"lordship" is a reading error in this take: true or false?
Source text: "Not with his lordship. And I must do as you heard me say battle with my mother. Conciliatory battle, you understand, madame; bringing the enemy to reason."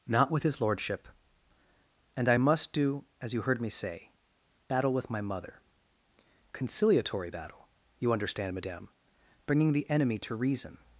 false